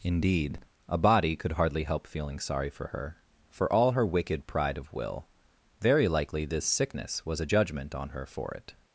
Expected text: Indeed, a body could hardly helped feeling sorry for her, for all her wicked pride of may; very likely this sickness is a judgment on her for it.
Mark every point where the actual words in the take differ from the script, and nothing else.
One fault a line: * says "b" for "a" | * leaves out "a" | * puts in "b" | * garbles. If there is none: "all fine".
* says "help" for "helped"
* says "will" for "may"
* says "was" for "is"